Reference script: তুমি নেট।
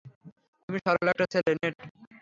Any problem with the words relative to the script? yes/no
yes